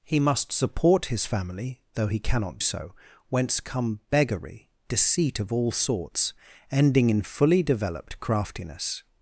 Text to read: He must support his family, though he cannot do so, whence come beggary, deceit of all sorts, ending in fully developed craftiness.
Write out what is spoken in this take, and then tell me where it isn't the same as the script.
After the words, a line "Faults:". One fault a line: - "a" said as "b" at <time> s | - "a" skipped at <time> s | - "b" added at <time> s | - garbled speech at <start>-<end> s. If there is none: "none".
He must support his family, though he cannot so, whence come beggary, deceit of all sorts, ending in fully developed craftiness.
Faults:
- "do" skipped at 2.6 s